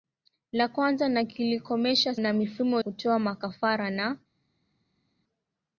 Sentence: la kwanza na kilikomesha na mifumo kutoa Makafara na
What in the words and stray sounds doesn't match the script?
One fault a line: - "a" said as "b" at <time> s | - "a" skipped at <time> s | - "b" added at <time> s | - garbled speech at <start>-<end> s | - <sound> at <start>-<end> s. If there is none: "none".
none